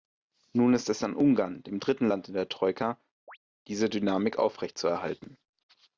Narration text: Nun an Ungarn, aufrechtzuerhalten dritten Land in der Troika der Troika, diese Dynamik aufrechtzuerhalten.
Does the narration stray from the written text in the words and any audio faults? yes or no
yes